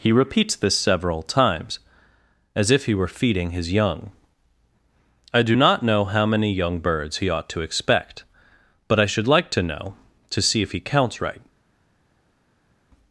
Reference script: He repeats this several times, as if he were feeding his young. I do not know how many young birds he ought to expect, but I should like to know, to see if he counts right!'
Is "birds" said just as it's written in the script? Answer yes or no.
yes